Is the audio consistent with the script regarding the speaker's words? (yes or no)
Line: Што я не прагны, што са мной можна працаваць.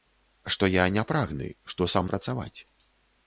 no